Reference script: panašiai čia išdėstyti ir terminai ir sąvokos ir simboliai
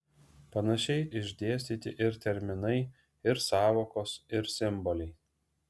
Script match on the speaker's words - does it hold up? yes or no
no